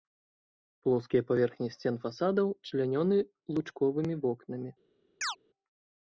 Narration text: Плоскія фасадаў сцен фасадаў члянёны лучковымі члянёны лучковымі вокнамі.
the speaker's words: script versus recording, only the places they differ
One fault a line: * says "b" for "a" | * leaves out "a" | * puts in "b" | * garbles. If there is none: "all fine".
* says "паверхні" for "фасадаў"
* leaves out "члянёны лучковымі"